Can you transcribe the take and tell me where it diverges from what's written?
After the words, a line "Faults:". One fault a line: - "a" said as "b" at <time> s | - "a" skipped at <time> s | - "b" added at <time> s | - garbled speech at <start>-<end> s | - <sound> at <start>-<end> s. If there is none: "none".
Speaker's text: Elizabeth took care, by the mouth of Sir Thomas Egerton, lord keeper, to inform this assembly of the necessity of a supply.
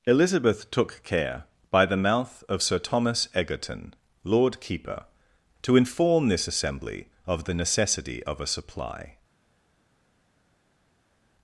Elizabeth took care, by the mouth of Sir Thomas Egerton, lord keeper, to inform this assembly of the necessity of a supply.
Faults:
none